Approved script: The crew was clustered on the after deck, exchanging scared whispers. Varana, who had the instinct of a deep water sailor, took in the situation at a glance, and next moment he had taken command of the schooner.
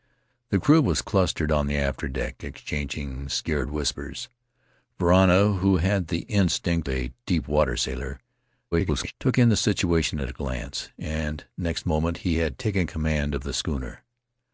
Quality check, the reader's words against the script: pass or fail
fail